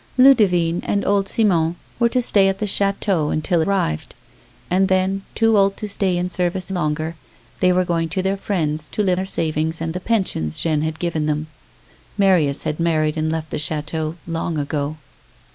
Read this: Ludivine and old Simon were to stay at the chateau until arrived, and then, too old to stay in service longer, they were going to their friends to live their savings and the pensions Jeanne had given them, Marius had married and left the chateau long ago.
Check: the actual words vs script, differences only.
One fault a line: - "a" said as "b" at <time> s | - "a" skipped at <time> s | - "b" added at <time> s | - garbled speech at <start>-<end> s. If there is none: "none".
none